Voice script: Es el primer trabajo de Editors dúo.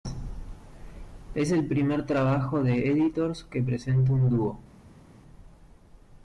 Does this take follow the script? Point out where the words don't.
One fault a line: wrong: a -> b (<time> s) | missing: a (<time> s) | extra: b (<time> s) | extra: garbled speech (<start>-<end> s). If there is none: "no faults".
extra: que presenta un (3.4 s)